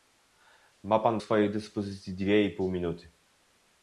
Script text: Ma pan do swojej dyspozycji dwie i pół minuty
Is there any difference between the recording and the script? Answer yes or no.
yes